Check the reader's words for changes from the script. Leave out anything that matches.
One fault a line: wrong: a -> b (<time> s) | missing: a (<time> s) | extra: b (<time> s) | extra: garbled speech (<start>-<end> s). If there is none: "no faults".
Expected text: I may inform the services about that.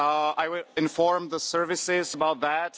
wrong: may -> will (0.5 s)